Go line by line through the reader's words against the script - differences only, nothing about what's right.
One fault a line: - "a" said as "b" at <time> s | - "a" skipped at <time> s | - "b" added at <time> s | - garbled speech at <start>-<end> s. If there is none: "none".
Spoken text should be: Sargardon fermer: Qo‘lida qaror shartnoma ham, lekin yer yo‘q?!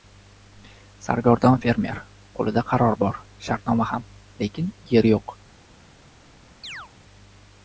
- "bor" added at 3.0 s